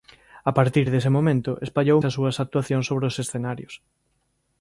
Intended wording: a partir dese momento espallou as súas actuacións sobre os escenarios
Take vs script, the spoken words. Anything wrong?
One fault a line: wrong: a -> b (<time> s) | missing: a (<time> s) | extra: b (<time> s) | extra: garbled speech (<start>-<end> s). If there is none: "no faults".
no faults